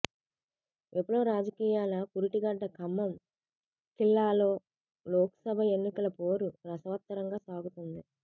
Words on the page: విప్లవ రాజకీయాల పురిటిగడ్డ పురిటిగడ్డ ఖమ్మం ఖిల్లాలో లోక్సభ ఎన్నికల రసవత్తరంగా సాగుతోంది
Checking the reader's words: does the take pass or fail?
fail